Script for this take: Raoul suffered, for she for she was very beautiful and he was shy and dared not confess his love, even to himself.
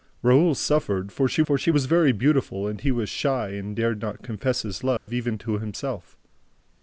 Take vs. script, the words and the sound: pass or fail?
fail